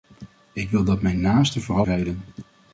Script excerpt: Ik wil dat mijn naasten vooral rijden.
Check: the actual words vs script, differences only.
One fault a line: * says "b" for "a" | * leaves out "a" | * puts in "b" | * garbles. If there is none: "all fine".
all fine